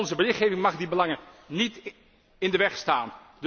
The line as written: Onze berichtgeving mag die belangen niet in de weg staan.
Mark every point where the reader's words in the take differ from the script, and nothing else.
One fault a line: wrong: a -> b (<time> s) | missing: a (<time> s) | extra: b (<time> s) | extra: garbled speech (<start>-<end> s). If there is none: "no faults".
no faults